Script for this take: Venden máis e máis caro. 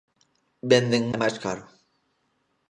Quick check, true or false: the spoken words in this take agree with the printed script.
false